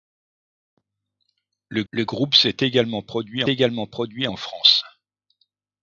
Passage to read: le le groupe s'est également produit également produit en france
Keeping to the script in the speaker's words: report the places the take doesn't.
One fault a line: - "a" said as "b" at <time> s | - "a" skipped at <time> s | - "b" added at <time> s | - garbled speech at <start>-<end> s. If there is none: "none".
none